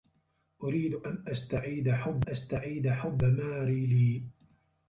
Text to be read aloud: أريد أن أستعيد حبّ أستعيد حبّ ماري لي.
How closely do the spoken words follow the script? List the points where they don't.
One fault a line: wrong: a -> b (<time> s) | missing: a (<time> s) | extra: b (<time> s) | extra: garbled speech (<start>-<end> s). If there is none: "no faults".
no faults